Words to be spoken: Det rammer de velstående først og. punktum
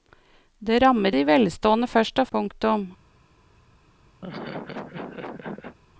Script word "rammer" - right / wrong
right